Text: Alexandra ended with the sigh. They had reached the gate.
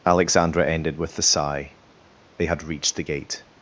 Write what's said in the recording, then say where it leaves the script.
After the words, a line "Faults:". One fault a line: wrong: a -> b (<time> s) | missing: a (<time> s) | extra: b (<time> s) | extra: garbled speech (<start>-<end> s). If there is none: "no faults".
Alexandra ended with the sigh. They had reached the gate.
Faults:
no faults